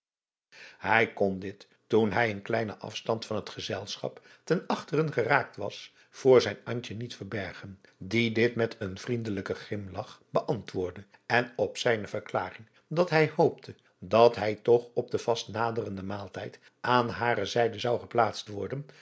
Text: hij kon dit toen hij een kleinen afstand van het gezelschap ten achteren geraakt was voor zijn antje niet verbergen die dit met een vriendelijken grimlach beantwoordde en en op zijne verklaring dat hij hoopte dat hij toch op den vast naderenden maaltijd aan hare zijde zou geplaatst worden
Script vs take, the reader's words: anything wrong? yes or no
yes